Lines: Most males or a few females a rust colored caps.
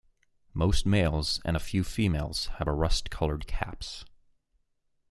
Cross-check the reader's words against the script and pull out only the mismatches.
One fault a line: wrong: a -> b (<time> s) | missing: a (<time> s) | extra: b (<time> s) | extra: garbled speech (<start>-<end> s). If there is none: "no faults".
wrong: or -> and (1.4 s)
extra: have (2.6 s)